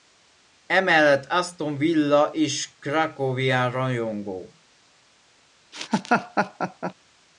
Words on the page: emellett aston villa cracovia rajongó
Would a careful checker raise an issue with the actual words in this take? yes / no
yes